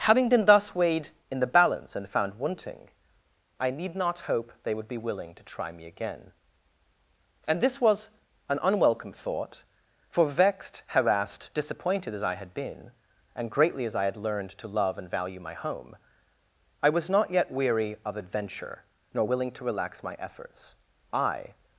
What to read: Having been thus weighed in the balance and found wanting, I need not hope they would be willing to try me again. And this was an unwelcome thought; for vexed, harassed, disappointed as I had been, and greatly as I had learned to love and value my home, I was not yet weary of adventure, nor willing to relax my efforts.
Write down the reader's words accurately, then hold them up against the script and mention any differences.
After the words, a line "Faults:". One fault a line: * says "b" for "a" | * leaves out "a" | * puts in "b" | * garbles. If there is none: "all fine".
Having been thus weighed in the balance and found wanting, I need not hope they would be willing to try me again. And this was an unwelcome thought; for vexed, harassed, disappointed as I had been, and greatly as I had learned to love and value my home, I was not yet weary of adventure, nor willing to relax my efforts. I
Faults:
* puts in "I"